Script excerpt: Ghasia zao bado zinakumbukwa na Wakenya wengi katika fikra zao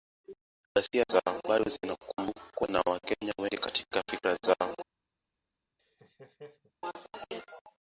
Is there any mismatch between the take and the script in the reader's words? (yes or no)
no